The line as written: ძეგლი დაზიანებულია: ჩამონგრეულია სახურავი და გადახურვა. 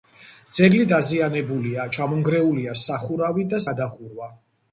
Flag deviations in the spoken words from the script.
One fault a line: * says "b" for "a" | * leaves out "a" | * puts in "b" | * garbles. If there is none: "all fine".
all fine